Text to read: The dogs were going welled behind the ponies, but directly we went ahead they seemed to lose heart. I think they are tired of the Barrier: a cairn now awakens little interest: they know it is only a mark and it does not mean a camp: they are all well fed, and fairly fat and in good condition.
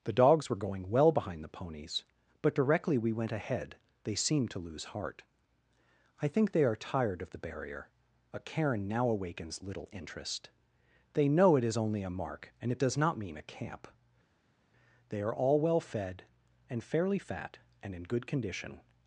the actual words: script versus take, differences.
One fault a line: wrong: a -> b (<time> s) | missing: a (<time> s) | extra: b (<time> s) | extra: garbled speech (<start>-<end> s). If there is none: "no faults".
wrong: welled -> well (0.9 s)